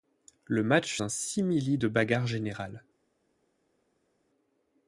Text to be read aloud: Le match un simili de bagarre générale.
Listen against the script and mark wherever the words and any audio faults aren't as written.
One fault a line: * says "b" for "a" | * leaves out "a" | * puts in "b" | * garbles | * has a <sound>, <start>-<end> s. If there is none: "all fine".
all fine